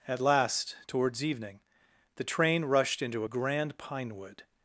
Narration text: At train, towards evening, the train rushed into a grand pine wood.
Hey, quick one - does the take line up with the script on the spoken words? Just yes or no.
no